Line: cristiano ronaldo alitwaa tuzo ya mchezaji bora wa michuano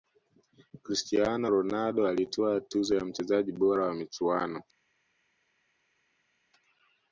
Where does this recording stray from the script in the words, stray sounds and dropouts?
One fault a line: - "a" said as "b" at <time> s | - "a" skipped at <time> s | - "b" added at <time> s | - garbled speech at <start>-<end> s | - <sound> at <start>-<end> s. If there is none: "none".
none